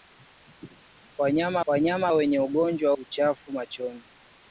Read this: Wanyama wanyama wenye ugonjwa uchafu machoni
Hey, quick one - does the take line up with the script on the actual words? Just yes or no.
yes